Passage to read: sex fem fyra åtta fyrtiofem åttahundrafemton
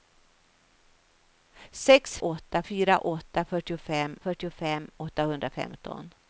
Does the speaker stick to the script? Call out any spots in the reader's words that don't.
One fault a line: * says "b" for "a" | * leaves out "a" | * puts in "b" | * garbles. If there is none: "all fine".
* says "åtta" for "fem"
* puts in "fyrtiofem"